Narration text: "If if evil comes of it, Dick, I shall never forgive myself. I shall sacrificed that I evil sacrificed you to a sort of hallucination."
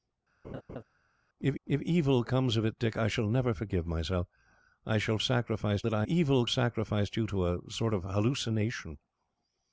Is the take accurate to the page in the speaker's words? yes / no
yes